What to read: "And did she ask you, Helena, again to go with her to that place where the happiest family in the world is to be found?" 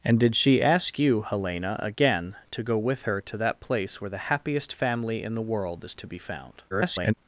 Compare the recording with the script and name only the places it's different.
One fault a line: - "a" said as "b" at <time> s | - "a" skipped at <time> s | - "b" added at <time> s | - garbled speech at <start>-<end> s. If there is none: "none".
- garbled speech at 6.7-7.1 s